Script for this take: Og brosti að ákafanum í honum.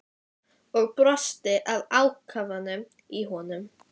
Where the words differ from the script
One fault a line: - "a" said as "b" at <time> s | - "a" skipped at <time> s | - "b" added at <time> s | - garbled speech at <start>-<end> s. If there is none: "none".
none